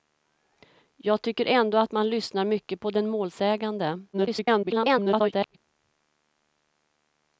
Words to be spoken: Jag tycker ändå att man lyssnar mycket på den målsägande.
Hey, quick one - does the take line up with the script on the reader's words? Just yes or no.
no